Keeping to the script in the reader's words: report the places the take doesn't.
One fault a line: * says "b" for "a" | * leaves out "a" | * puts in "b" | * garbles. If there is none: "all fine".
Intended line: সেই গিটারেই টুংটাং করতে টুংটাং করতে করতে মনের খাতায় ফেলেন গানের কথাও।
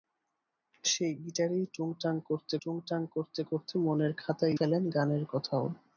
all fine